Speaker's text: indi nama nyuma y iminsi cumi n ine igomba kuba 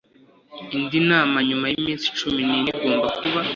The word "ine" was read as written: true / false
true